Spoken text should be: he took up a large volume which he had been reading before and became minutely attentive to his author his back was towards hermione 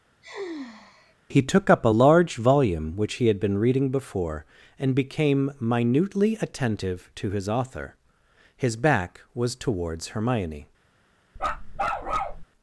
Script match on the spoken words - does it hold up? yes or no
yes